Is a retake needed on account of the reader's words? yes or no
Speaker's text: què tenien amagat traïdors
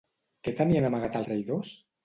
no